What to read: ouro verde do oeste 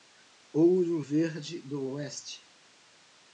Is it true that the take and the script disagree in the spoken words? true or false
false